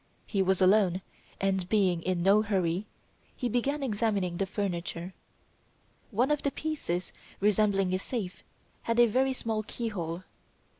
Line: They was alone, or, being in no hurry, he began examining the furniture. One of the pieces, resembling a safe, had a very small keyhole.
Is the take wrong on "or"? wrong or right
wrong